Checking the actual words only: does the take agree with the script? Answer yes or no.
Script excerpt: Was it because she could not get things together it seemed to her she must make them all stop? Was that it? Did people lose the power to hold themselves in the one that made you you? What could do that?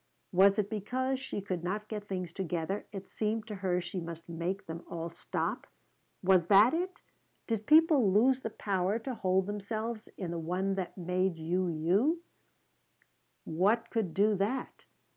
yes